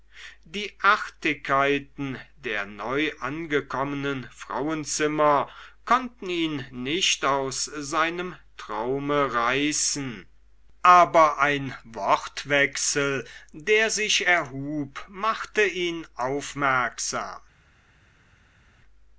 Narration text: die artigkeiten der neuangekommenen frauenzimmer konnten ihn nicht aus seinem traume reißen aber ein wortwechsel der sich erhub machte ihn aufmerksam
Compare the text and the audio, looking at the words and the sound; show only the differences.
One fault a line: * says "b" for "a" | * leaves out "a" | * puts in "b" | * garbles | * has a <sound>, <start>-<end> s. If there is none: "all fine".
all fine